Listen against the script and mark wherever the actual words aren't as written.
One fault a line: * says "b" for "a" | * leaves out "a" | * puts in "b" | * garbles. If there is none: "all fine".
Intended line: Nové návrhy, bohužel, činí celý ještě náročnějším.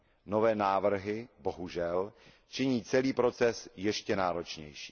* puts in "proces"